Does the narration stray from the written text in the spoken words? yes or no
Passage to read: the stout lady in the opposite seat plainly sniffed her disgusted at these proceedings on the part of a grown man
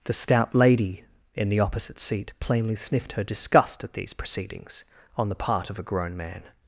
yes